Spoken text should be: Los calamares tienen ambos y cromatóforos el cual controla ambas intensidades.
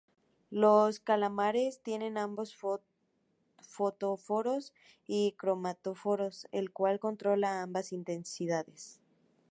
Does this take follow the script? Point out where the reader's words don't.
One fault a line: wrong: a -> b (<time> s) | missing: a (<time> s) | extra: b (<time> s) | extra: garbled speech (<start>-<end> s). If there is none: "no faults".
extra: fotóforos (3.6 s)